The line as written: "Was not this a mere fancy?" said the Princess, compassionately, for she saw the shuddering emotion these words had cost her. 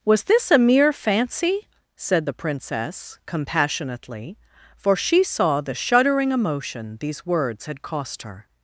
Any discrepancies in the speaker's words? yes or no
yes